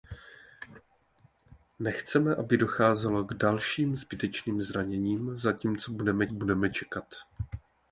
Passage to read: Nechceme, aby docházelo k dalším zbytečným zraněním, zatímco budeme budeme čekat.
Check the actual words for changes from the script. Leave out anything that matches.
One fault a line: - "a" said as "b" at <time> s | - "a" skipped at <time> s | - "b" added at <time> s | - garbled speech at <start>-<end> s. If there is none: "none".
none